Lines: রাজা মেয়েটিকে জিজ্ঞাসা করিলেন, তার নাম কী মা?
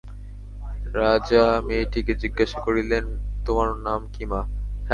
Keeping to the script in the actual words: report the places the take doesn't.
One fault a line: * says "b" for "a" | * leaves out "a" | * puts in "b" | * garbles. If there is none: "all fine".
* says "তোমার" for "তার"